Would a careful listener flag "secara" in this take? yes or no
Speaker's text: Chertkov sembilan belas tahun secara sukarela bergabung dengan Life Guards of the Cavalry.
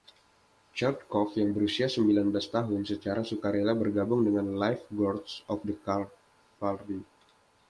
no